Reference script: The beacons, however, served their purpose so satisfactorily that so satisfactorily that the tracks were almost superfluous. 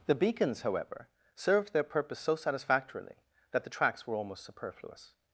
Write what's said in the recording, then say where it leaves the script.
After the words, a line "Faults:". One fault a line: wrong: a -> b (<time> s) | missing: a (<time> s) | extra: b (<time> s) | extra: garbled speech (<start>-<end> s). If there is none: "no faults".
The beacons, however, served their purpose so satisfactorily that the tracks were almost superfluous.
Faults:
missing: so satisfactorily that (3.6 s)